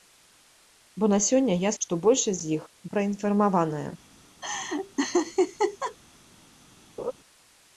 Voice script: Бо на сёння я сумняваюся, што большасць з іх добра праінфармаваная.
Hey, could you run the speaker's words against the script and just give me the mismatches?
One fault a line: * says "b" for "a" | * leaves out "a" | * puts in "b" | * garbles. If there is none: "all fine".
* leaves out "сумняваюся"
* leaves out "добра"